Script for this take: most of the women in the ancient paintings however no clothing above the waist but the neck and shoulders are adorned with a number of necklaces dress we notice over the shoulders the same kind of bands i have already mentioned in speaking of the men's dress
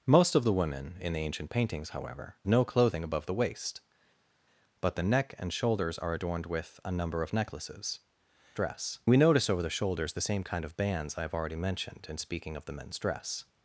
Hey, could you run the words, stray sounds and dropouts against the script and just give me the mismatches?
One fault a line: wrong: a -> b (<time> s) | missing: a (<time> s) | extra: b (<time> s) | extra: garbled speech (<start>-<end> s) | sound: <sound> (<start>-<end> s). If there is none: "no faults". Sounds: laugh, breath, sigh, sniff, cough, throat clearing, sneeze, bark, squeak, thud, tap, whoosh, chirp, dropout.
no faults